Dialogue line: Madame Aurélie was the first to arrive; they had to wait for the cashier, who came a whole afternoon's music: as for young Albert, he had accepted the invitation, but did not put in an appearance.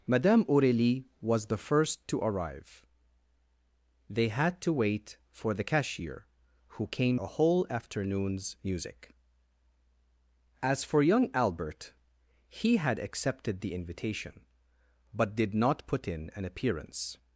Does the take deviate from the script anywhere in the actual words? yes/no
no